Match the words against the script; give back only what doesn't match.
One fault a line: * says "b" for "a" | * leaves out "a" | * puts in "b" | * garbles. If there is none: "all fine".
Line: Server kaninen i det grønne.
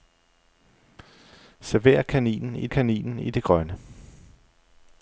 * puts in "kaninen i"